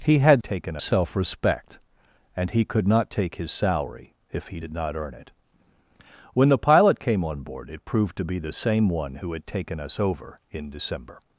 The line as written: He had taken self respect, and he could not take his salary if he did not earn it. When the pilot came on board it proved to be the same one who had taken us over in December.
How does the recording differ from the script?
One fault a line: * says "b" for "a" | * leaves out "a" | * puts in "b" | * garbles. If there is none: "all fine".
all fine